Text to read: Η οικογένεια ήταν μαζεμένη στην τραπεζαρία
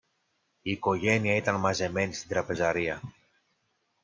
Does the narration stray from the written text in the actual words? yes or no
no